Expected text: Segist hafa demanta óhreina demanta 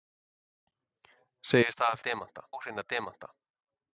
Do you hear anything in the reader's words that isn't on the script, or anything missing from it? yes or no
no